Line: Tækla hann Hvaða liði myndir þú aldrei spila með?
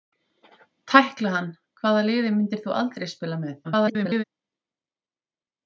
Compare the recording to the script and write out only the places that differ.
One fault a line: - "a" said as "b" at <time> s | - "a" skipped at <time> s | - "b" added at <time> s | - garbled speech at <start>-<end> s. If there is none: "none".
- garbled speech at 3.6-4.2 s